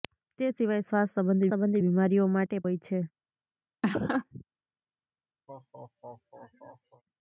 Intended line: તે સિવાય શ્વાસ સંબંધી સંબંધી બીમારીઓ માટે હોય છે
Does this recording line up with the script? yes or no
yes